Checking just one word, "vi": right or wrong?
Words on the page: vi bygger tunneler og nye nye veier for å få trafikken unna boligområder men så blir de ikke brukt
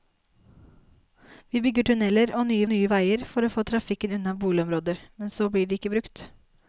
right